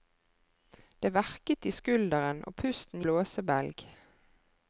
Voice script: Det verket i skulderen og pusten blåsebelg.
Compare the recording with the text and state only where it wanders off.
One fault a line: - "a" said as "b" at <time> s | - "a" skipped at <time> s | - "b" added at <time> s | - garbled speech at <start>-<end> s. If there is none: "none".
none